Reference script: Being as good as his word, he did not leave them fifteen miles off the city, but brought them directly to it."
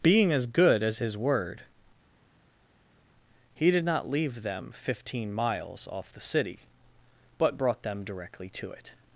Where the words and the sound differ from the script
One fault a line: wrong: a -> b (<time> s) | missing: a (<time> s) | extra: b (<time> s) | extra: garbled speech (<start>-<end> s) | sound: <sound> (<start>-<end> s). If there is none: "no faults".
no faults